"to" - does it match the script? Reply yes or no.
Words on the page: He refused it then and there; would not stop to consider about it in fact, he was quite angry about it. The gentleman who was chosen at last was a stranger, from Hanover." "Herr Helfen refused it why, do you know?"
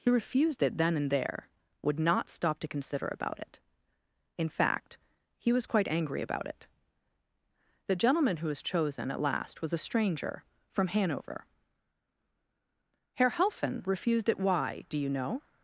yes